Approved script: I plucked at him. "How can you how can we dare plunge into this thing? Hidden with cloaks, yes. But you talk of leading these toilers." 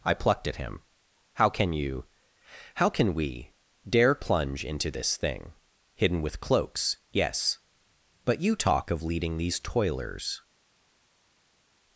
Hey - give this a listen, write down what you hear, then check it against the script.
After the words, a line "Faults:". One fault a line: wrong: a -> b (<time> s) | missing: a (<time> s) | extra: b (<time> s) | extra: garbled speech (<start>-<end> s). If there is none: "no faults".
I plucked at him. "How can you how can we dare plunge into this thing? Hidden with cloaks, yes. But you talk of leading these toilers."
Faults:
no faults